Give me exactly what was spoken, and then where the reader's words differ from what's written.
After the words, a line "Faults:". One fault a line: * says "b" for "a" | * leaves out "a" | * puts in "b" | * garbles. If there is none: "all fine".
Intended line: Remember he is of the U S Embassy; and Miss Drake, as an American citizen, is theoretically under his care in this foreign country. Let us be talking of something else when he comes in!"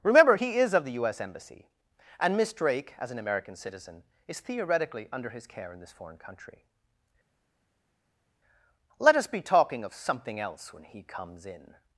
Remember he is of the U S Embassy; and Miss Drake, as an American citizen, is theoretically under his care in this foreign country. Let us be talking of something else when he comes in!"
Faults:
all fine